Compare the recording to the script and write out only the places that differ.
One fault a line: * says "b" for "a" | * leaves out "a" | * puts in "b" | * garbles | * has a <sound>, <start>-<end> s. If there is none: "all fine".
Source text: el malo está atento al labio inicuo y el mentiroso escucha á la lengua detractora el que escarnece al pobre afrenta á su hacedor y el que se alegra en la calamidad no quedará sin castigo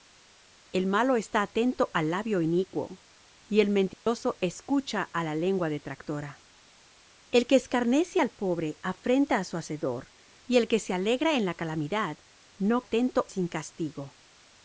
* has a dropout, 3.9-4.1 s
* says "atento" for "quedará"